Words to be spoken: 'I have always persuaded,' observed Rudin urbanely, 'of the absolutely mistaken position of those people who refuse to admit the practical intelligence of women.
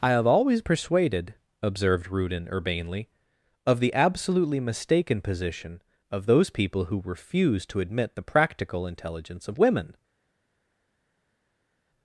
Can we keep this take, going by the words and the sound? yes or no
yes